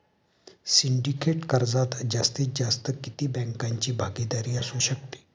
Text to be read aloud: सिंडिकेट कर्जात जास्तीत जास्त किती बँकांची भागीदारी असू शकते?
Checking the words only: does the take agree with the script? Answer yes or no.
yes